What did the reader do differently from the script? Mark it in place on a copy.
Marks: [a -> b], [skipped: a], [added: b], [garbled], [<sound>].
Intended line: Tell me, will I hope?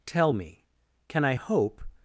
Tell me, [will -> can] I hope?